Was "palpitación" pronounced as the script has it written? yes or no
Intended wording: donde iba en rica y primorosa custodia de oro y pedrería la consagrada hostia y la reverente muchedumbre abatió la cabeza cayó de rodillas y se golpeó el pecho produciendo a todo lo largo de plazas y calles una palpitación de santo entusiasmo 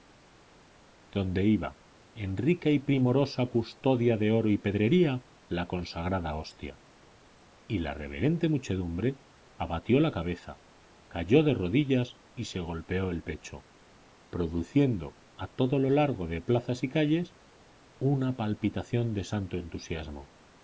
yes